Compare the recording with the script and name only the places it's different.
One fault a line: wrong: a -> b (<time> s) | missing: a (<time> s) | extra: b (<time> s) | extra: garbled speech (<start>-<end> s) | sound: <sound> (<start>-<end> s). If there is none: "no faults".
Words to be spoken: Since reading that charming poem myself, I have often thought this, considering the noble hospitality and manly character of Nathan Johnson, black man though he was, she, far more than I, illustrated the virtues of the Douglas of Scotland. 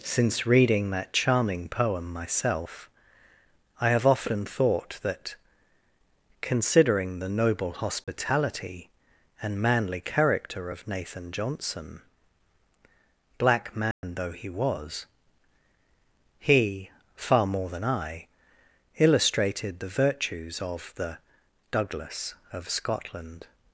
wrong: this -> that (5.0 s)
sound: dropout (8.0-8.1 s)
sound: dropout (13.9-14.0 s)
wrong: she -> he (16.4 s)